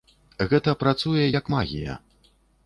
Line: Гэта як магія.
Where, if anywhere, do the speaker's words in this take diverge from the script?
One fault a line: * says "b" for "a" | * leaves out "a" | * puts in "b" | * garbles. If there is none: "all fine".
* puts in "працуе"